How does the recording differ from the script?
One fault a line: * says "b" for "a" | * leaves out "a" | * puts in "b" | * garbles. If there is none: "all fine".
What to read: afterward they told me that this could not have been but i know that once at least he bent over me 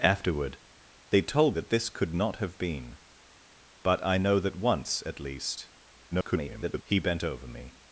* leaves out "me"
* garbles